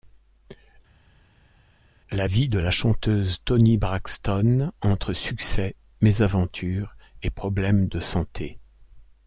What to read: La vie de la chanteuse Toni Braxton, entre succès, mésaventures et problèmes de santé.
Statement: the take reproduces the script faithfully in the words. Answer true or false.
true